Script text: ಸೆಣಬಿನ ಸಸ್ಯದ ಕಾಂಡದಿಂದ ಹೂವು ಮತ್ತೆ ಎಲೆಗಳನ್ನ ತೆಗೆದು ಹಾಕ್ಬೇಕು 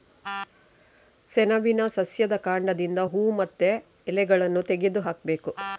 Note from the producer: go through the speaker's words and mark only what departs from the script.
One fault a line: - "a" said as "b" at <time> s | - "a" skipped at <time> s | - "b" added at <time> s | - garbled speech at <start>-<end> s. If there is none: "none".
none